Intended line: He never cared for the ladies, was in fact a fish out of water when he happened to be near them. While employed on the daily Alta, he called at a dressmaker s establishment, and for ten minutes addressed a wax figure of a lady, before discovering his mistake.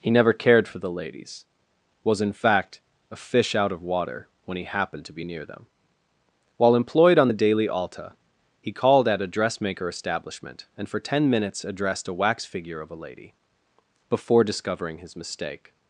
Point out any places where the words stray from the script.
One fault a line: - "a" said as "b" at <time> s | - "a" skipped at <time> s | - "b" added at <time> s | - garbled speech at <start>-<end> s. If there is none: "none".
- "s" skipped at 9.9 s